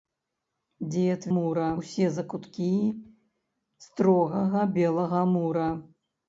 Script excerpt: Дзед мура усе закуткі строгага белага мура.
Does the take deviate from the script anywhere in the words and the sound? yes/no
no